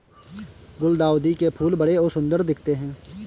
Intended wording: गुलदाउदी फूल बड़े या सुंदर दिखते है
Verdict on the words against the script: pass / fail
fail